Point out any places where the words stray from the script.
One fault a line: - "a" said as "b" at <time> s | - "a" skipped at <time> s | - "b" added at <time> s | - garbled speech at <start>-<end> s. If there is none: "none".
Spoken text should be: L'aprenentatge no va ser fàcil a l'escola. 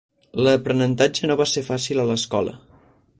none